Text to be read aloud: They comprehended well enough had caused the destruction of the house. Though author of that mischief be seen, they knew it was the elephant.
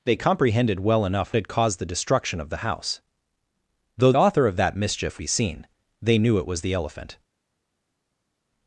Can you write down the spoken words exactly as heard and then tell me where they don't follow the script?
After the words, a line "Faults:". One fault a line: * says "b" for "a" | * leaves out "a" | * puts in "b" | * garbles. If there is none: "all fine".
They comprehended well enough had caused the destruction of the house. Though author of that mischief be seen, they knew it was the elephant.
Faults:
all fine